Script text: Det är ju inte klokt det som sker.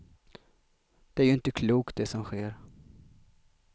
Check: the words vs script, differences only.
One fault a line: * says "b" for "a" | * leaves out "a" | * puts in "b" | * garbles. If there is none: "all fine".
all fine